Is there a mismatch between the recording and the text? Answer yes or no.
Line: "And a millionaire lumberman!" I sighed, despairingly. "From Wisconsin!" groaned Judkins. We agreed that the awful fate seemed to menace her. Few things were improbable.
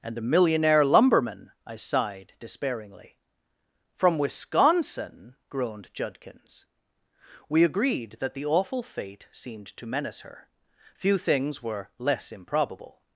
yes